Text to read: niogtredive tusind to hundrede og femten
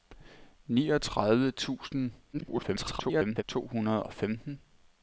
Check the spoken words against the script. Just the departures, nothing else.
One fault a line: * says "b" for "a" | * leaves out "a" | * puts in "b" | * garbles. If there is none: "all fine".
* garbles